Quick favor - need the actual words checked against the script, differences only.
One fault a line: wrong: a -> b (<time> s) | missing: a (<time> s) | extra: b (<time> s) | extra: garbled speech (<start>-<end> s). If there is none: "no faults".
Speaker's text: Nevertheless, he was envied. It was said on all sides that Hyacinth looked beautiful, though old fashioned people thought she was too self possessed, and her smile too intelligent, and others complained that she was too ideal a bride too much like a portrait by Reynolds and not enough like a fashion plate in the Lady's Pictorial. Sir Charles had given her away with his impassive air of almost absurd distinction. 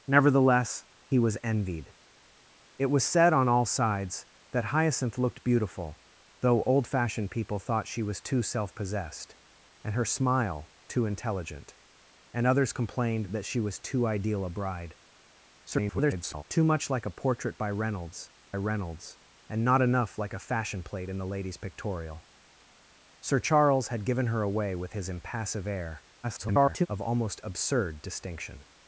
extra: garbled speech (15.6-16.4 s)
extra: Reynolds (18.5 s)
extra: garbled speech (26.2-26.9 s)